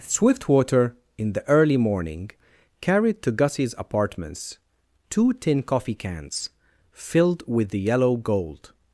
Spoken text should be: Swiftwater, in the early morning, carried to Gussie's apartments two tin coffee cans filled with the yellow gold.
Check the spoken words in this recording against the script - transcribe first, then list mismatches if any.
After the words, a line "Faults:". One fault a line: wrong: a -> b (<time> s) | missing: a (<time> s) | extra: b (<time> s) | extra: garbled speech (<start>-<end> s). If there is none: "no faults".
Swiftwater, in the early morning, carried to Gussie's apartments two tin coffee cans filled with the yellow gold.
Faults:
no faults